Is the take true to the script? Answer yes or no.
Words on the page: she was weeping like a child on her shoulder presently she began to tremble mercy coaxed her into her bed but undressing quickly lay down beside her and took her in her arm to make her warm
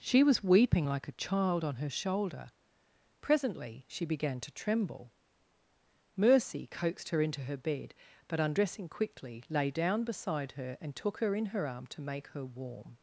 yes